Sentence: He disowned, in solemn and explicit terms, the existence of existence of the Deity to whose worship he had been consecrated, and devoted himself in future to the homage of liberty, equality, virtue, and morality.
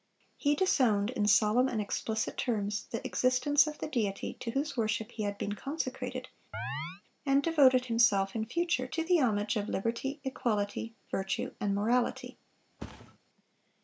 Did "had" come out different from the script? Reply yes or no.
no